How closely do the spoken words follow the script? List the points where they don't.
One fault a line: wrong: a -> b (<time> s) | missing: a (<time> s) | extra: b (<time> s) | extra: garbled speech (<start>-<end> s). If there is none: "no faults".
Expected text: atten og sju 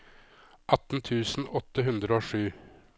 extra: tusen åtte hundre (1.1 s)